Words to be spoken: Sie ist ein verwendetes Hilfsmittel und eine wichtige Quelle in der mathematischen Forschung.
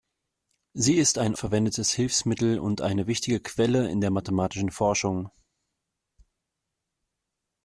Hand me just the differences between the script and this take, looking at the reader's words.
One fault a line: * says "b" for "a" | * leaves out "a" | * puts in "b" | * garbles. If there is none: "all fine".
all fine